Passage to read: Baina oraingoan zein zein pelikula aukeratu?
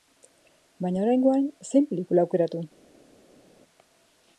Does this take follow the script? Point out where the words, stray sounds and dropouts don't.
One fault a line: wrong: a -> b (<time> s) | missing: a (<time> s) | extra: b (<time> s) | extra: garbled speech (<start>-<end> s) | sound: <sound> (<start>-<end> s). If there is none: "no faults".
missing: zein (1.9 s)